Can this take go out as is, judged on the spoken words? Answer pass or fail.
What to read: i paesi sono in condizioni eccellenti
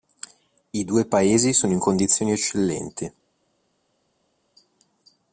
fail